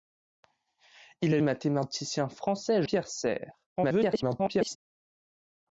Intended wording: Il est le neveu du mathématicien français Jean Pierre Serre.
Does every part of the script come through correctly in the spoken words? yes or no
no